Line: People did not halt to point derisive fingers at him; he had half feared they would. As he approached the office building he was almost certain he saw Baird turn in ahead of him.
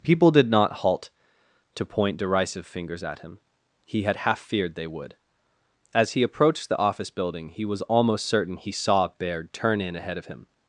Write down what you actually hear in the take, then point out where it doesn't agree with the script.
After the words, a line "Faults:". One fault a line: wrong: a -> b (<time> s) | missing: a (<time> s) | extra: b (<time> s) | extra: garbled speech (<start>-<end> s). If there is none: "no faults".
People did not halt to point derisive fingers at him; he had half feared they would. As he approached the office building he was almost certain he saw Baird turn in ahead of him.
Faults:
no faults